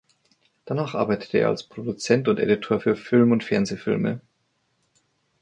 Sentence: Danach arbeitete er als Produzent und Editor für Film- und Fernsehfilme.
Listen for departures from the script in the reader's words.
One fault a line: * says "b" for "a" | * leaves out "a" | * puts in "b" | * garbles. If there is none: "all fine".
all fine